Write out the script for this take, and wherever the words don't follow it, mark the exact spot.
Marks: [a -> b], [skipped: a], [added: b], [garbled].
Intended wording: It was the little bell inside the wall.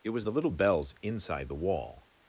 It was the little [bell -> bells] inside the wall.